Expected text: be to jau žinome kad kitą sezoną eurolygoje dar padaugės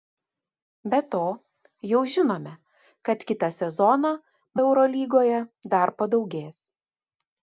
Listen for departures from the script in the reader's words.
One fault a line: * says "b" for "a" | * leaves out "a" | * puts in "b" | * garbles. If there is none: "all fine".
all fine